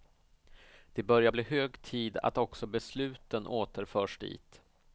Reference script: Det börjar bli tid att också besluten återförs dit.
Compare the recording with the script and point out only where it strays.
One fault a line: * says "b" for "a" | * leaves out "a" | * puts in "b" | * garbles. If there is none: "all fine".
* puts in "hög"